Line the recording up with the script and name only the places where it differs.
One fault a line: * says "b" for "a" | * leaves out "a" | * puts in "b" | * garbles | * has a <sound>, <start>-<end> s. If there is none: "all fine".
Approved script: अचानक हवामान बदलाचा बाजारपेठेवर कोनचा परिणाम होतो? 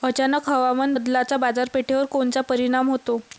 all fine